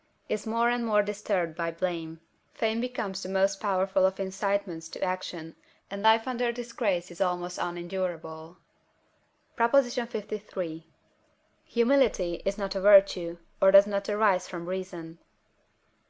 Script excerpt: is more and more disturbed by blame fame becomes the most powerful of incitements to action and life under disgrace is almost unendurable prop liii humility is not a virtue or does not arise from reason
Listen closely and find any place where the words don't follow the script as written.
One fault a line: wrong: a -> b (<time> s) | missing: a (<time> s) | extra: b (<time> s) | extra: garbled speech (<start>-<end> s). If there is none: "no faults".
no faults